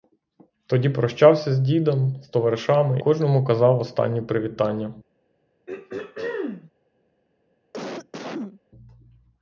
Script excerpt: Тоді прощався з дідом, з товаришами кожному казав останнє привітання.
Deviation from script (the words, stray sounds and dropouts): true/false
true